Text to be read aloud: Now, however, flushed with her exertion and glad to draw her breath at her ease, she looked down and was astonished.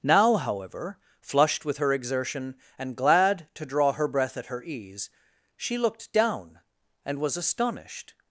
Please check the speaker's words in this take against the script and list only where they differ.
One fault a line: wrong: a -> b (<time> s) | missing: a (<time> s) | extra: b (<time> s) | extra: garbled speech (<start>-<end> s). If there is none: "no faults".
no faults